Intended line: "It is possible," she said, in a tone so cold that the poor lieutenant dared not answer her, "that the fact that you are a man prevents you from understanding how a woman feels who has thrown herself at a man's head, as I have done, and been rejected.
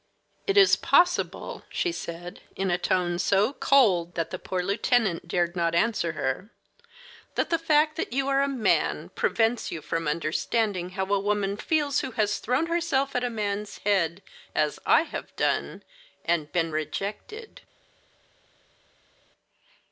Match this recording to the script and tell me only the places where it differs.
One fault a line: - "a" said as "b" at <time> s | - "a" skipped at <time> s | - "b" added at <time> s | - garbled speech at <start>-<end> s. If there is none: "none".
none